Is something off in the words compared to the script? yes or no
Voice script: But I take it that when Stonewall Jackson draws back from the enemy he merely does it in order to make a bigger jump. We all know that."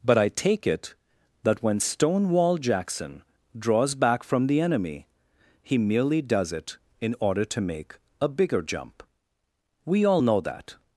no